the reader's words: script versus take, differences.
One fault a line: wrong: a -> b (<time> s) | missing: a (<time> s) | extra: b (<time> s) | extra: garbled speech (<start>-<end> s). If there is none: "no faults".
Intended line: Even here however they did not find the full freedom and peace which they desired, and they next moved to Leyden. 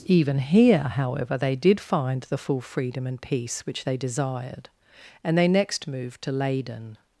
missing: not (1.8 s)